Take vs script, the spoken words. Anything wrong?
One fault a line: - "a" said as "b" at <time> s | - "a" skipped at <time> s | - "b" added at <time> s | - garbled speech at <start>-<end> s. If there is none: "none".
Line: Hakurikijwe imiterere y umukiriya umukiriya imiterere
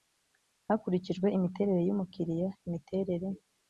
- "umukiriya" skipped at 2.5 s